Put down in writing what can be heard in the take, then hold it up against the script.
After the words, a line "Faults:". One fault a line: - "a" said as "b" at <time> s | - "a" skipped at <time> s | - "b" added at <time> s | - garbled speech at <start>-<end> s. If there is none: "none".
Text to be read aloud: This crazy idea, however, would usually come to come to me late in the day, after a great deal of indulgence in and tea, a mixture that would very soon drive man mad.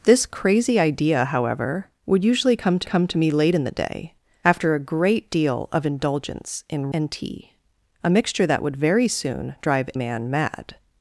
This crazy idea, however, would usually come to come to me late in the day, after a great deal of indulgence in and tea, a mixture that would very soon drive man mad.
Faults:
none